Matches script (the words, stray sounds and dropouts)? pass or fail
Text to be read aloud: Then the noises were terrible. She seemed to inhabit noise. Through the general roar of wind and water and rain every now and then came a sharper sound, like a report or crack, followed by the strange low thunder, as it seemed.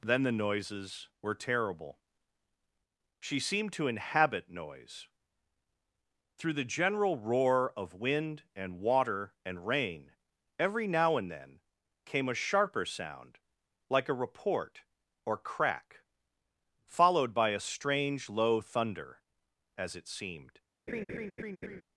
fail